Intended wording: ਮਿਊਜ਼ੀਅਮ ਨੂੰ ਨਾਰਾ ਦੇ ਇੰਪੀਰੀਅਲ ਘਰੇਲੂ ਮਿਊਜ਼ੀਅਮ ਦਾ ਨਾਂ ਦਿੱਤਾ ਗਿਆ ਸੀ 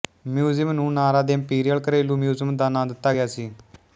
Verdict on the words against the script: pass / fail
pass